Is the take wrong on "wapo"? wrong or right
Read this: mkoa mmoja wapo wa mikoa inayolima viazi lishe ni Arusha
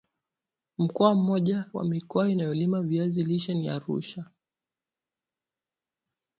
wrong